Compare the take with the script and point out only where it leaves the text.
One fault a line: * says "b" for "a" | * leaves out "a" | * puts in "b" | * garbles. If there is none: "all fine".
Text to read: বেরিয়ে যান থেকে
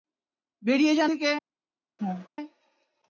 all fine